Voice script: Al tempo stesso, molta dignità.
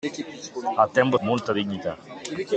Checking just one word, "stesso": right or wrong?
wrong